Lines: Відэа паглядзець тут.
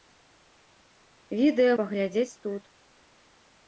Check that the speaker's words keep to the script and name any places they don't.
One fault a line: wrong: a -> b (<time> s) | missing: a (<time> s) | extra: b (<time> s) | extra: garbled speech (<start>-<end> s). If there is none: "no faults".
no faults